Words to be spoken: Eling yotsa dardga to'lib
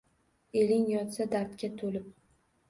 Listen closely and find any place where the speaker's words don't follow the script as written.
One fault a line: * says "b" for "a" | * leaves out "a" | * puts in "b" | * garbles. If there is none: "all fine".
all fine